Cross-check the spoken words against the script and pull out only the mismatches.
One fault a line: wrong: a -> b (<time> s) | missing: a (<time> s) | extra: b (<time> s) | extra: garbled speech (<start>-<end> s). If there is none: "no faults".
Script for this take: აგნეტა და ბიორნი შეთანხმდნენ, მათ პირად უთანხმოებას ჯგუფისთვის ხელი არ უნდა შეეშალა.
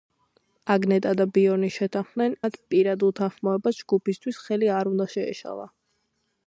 no faults